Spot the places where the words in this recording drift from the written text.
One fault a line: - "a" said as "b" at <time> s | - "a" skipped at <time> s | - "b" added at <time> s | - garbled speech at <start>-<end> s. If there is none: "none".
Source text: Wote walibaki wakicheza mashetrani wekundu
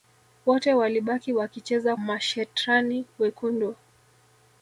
none